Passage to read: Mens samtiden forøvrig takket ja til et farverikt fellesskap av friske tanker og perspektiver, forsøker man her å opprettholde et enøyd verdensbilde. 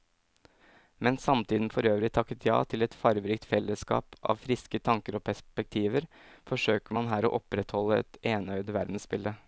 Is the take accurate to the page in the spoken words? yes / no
yes